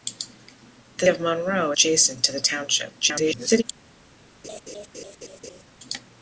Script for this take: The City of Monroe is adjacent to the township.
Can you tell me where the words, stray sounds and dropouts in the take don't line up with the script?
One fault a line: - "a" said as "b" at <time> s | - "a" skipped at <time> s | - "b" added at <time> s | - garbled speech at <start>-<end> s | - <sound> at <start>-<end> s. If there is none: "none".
- "City" skipped at 1.1 s
- "is" skipped at 1.7 s
- garbled speech at 3.0-3.6 s
- laugh at 4.4-5.6 s